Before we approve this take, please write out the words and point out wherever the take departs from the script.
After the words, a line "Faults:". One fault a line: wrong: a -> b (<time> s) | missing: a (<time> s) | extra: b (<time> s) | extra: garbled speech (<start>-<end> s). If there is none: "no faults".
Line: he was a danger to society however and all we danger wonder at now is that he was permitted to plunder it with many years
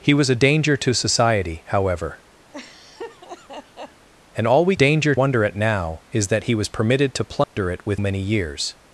he was a danger to society however and all we danger wonder at now is that he was permitted to plunder it with many years
Faults:
no faults